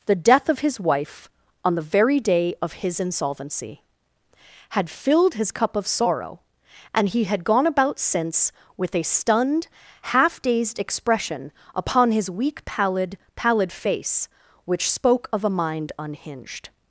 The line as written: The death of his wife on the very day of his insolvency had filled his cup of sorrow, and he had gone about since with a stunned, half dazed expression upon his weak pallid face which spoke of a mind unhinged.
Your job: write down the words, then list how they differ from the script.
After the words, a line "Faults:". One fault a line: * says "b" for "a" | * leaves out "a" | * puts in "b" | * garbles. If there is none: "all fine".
The death of his wife on the very day of his insolvency had filled his cup of sorrow, and he had gone about since with a stunned, half dazed expression upon his weak pallid pallid face which spoke of a mind unhinged.
Faults:
* puts in "pallid"